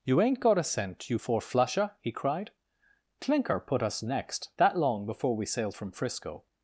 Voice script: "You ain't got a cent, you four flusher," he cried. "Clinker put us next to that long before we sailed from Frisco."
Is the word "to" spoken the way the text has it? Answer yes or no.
no